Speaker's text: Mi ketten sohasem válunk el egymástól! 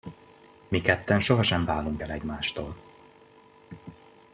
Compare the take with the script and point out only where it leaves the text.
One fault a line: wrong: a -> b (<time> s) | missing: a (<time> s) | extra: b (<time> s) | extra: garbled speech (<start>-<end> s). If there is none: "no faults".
no faults